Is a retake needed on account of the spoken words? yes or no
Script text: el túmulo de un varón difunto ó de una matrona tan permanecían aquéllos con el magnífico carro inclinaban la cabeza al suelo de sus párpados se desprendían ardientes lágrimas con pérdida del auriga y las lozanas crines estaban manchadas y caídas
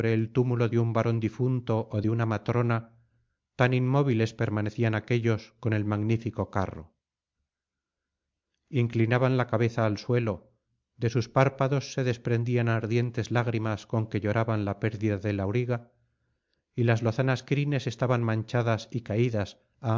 yes